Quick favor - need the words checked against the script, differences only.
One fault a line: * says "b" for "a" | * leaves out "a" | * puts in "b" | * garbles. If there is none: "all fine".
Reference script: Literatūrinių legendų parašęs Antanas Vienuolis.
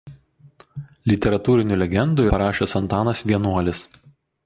all fine